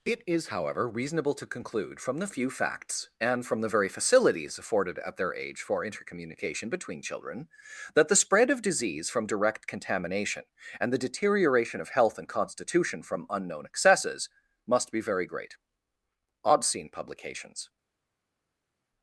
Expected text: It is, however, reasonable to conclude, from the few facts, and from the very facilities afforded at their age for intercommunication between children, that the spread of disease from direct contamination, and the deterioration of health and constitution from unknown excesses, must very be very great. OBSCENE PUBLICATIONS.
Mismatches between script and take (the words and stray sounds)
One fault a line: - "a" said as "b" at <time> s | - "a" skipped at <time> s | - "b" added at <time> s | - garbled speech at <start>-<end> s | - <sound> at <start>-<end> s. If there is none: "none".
- "very" skipped at 14.9 s